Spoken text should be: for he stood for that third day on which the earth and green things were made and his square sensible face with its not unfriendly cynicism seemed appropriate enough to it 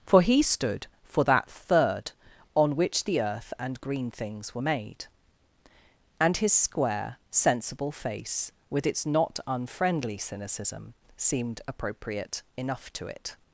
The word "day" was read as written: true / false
false